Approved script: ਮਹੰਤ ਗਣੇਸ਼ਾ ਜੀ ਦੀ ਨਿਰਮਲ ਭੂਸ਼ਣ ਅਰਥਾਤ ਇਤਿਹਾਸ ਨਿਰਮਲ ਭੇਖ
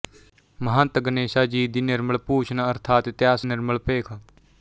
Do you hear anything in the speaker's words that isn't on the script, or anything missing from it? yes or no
no